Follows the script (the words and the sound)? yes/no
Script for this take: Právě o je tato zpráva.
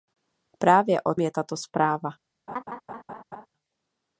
no